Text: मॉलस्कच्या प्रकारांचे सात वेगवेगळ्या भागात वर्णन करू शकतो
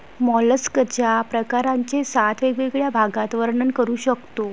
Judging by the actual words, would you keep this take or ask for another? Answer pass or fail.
pass